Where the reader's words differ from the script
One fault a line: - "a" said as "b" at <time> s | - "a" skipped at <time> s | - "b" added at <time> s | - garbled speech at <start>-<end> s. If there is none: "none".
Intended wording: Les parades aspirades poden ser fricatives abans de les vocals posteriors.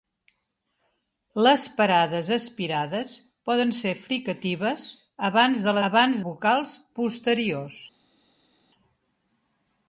- "les" said as "abans" at 5.9 s